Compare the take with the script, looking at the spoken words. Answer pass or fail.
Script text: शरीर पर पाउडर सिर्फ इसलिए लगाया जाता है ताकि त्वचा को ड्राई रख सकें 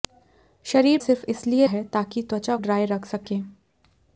fail